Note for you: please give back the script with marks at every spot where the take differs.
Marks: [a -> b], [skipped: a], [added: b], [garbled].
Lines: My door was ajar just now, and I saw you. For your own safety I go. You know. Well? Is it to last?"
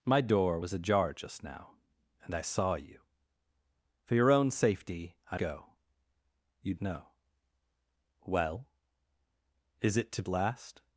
My door was ajar just now, and I saw you. For your own safety I go. You know. Well? Is it to last?"